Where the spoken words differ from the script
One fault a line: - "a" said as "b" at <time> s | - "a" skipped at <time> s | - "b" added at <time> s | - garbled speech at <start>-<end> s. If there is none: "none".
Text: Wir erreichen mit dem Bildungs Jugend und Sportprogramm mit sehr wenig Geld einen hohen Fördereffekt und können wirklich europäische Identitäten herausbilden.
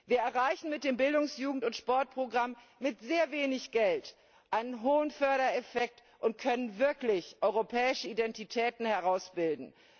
none